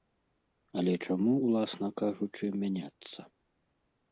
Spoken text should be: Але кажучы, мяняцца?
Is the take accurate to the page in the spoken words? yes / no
no